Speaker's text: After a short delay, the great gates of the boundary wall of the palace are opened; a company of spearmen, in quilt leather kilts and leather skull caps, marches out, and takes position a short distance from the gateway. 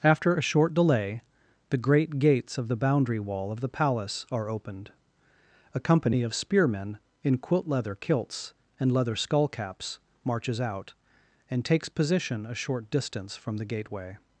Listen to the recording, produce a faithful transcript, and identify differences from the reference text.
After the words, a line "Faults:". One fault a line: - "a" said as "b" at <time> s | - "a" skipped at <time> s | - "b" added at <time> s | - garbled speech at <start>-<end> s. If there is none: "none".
After a short delay, the great gates of the boundary wall of the palace are opened; a company of spearmen, in quilt leather kilts and leather skull caps, marches out, and takes position a short distance from the gateway.
Faults:
none